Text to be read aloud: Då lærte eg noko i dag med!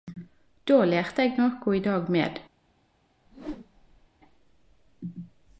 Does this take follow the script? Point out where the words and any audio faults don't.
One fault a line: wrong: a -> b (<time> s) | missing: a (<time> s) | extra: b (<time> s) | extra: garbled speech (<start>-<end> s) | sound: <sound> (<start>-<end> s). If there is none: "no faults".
sound: whoosh (3.3-4.1 s)